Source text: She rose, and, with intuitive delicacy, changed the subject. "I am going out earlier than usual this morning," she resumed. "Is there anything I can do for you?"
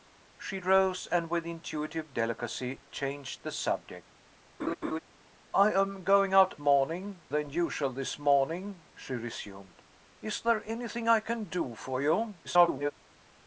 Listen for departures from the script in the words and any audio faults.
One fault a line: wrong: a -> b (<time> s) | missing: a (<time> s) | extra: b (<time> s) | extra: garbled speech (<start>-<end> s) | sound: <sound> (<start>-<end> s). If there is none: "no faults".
sound: laugh (4.6-5.0 s)
wrong: earlier -> morning (6.6 s)
extra: garbled speech (12.4-12.9 s)